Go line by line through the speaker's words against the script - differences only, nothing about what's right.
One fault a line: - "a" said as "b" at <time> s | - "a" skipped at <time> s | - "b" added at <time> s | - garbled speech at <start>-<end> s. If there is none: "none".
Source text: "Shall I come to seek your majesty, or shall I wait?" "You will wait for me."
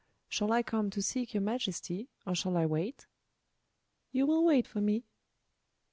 none